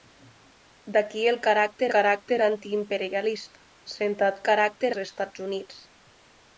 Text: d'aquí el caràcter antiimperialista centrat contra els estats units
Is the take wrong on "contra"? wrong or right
wrong